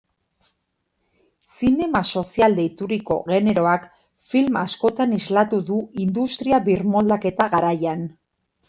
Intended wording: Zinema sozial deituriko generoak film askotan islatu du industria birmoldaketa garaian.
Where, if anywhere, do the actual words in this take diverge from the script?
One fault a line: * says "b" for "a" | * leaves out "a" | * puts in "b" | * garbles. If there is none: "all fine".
all fine